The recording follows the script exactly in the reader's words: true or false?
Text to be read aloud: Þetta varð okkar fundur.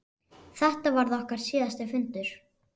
false